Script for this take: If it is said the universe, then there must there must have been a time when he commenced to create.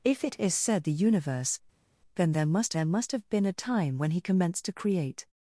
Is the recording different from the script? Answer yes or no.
no